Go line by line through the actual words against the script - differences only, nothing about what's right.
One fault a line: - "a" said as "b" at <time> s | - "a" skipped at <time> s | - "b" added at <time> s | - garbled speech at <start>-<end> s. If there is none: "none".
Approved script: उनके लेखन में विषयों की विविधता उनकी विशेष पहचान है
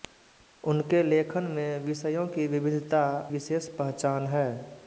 - "उनकी" skipped at 3.0 s